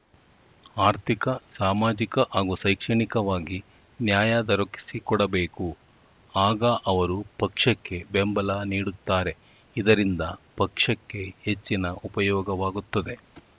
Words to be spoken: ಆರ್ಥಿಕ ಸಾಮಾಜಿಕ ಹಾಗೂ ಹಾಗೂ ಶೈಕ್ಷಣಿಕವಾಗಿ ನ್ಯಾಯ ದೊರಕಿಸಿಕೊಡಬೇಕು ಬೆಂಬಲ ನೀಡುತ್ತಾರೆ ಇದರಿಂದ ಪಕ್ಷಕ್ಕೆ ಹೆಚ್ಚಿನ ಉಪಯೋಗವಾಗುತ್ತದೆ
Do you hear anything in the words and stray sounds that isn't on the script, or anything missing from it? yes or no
yes